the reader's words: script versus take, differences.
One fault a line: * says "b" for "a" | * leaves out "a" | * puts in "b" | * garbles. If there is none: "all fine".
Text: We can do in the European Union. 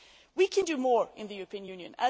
* puts in "more"